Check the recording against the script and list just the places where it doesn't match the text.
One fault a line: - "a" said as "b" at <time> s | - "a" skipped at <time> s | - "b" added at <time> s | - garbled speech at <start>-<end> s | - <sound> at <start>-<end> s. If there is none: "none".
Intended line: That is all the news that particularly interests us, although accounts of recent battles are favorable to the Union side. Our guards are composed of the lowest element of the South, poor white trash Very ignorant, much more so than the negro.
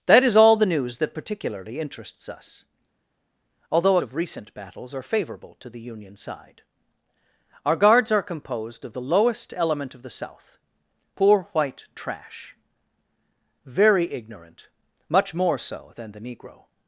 - "accounts" skipped at 4.0 s